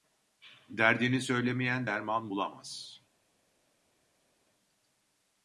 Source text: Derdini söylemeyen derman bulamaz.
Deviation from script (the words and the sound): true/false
false